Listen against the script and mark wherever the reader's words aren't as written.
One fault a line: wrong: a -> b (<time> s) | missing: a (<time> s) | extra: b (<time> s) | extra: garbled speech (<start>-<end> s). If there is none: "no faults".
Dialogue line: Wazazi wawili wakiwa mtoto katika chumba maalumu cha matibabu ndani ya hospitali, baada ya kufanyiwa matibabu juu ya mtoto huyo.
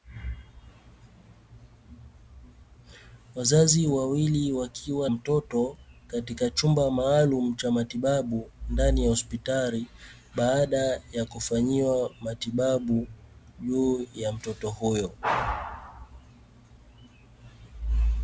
no faults